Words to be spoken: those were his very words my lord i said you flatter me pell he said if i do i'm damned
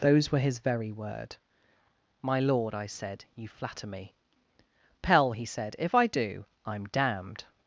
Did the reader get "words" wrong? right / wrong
wrong